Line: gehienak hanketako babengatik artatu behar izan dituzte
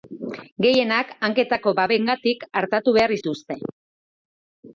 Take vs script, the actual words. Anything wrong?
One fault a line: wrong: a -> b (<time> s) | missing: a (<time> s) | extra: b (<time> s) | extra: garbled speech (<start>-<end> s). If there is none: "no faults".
missing: izan (3.2 s)